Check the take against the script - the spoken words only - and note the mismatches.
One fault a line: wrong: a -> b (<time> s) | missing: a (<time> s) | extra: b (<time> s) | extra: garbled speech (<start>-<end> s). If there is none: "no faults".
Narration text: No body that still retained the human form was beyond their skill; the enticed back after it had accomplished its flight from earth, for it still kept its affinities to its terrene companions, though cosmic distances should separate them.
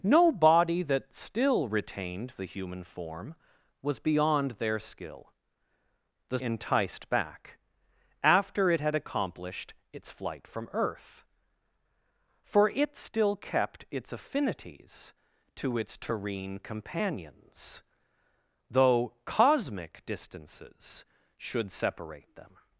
no faults